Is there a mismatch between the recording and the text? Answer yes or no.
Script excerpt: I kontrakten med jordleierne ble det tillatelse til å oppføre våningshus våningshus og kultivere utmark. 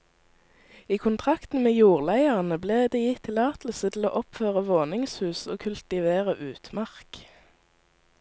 yes